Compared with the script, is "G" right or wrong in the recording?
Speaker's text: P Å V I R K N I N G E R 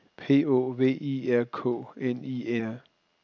wrong